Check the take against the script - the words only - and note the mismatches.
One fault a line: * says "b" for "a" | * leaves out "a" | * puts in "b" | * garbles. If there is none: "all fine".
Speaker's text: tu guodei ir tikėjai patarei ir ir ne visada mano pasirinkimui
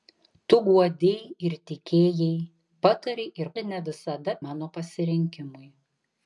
all fine